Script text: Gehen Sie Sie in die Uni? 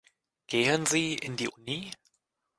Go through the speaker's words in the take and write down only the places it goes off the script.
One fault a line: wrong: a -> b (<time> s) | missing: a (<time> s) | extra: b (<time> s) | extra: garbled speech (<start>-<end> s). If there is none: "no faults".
missing: Sie (1.1 s)